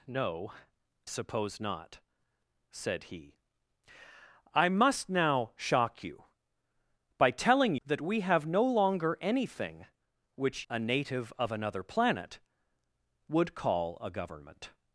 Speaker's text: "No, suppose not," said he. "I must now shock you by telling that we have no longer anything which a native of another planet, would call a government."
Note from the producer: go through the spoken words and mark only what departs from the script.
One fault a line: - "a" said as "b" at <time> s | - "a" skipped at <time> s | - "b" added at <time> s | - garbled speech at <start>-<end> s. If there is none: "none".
none